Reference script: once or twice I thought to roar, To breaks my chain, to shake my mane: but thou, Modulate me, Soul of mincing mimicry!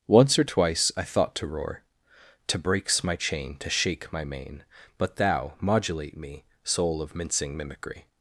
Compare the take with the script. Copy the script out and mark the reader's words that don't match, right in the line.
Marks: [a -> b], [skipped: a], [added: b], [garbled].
once or twice I thought to roar, To breaks my chain, to shake my mane: but thou, Modulate me, Soul of mincing mimicry!